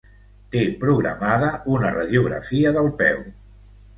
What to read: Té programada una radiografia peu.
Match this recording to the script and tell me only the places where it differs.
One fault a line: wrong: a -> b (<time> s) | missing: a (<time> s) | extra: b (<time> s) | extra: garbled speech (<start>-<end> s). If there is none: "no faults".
extra: del (2.8 s)